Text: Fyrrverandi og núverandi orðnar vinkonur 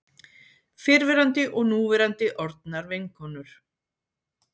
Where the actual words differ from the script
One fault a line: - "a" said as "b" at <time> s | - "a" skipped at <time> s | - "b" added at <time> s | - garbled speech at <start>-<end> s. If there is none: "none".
none